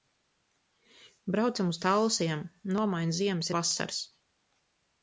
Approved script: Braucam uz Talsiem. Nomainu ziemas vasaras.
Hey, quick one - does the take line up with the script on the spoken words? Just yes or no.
yes